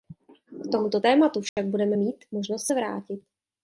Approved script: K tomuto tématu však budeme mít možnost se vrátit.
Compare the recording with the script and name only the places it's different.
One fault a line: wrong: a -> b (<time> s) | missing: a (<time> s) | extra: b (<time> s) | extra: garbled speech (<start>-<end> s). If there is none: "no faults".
no faults